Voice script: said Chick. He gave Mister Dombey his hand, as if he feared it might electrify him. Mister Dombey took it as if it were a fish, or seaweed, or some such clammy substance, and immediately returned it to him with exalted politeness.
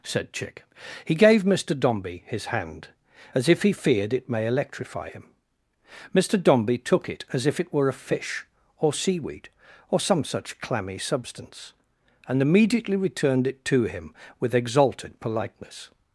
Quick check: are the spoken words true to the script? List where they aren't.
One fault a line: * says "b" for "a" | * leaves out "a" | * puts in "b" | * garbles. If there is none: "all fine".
* says "may" for "might"